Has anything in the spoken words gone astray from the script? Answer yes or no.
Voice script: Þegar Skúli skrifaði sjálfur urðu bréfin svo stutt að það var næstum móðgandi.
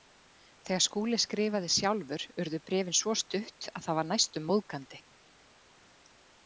no